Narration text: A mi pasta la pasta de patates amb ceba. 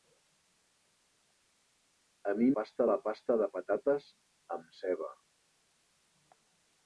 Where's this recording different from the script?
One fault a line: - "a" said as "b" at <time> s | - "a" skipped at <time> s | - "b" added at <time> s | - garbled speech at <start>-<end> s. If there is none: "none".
none